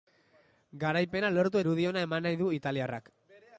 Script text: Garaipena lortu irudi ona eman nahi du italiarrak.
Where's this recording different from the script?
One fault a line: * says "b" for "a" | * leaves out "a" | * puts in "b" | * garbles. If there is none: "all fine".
all fine